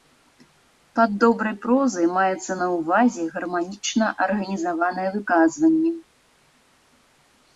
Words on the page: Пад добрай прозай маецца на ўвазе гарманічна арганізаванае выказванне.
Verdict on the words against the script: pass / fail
pass